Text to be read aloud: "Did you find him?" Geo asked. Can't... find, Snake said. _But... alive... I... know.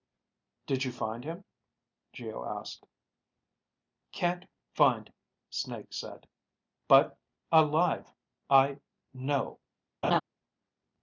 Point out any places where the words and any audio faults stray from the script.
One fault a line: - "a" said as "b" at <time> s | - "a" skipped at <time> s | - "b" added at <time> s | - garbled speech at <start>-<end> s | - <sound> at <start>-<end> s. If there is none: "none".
- laugh at 10.0-10.2 s